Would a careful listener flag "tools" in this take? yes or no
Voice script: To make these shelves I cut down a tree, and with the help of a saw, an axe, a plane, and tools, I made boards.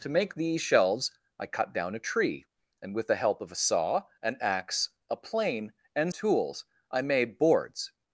no